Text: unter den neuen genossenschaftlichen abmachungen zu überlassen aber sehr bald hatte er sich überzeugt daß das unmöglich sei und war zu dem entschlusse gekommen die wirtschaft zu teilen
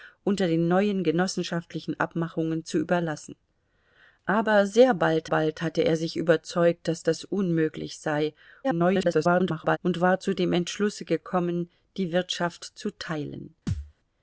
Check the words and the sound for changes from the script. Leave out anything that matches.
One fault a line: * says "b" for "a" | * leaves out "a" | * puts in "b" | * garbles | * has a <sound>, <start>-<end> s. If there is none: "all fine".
* puts in "bald"
* garbles
* has a thud, 13.7-13.9 s